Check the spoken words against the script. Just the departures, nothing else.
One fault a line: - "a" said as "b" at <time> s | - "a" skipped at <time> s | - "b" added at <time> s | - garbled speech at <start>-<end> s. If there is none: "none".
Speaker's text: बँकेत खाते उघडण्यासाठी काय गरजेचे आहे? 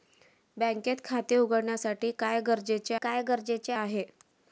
- "काय गरजेचे" added at 2.9 s